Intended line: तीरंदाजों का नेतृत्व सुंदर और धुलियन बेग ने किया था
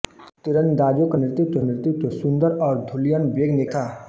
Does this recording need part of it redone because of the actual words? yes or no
yes